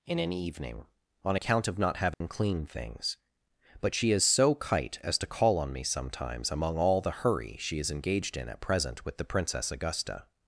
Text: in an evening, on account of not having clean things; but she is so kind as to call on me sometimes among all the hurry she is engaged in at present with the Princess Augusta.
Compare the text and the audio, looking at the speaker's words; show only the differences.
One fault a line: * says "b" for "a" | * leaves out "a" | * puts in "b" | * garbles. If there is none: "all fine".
* says "kite" for "kind"